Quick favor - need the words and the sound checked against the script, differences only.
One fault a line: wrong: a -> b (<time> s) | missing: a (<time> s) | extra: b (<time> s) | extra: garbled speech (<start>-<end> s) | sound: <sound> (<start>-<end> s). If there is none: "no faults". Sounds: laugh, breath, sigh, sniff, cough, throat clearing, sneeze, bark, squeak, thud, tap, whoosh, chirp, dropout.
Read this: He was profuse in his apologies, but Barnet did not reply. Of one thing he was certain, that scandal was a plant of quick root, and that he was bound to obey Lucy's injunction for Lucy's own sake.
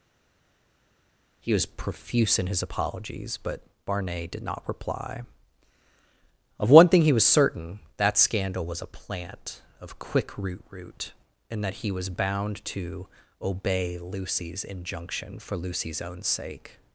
extra: root (10.7 s)